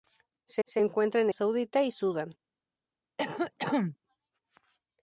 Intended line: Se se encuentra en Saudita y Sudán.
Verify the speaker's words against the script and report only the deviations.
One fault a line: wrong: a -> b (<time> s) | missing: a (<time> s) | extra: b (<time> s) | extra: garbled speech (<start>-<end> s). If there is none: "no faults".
no faults